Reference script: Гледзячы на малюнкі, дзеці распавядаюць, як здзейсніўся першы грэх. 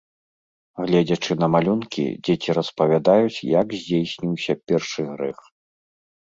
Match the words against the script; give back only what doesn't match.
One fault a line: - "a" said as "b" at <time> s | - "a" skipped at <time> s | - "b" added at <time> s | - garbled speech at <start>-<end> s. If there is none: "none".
none